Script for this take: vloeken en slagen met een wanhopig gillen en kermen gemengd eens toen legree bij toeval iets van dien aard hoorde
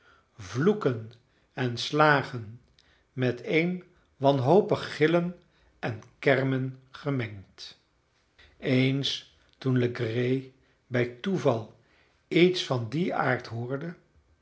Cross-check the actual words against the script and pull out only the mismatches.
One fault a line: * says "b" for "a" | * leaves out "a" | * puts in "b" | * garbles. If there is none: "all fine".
all fine